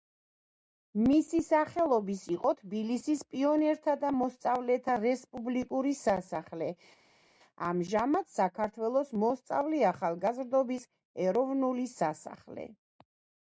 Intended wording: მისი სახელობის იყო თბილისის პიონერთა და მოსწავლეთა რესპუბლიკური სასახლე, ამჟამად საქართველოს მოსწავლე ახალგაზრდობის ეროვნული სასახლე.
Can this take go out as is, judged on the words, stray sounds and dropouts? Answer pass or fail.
pass